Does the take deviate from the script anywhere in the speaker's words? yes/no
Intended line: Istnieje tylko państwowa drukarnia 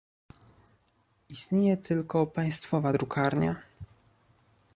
no